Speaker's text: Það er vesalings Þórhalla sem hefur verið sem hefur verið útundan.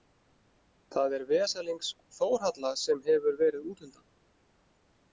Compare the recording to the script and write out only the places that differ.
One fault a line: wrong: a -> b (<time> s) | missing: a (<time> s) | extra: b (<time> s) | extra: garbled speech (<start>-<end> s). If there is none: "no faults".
missing: sem hefur verið (3.7 s)